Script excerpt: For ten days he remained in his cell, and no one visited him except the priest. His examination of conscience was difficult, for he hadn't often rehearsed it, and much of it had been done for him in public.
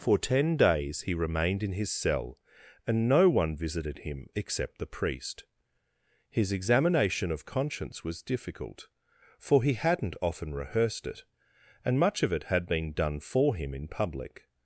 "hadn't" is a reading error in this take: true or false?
false